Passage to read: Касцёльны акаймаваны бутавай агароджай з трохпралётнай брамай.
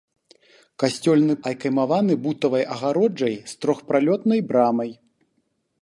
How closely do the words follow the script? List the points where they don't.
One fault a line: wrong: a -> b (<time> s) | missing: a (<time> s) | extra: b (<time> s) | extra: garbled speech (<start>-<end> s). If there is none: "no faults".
no faults